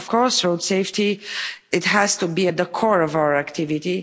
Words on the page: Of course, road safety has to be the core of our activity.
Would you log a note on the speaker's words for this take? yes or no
yes